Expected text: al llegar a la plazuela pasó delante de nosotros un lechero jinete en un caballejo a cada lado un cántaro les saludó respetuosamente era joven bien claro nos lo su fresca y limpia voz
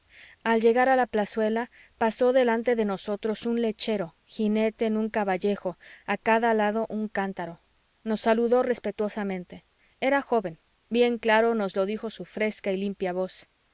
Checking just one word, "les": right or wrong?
wrong